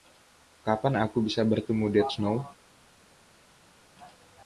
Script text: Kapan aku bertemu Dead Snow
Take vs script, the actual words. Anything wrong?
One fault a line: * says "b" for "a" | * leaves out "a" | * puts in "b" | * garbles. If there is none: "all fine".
* puts in "bisa"